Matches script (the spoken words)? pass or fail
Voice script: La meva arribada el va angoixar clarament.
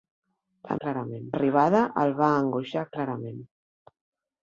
fail